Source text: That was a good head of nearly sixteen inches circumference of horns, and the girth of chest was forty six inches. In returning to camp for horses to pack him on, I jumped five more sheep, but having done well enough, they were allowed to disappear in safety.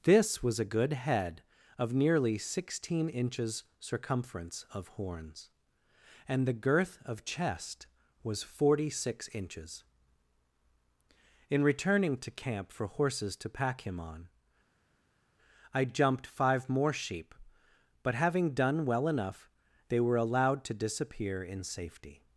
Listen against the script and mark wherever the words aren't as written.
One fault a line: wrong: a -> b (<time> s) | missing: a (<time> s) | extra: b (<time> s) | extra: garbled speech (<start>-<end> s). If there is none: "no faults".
wrong: That -> This (0.0 s)